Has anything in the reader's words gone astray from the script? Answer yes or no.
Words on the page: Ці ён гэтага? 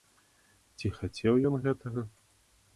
yes